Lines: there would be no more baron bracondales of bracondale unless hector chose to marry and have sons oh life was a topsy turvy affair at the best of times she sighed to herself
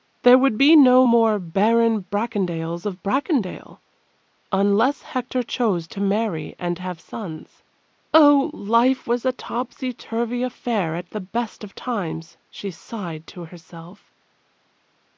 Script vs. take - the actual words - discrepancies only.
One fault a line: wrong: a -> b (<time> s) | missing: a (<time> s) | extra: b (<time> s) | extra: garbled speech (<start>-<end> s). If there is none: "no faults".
no faults